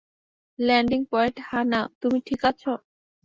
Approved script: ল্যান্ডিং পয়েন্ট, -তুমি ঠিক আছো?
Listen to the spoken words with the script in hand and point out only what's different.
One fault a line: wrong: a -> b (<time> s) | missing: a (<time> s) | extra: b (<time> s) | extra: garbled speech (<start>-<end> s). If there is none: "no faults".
extra: হা-না (1.4 s)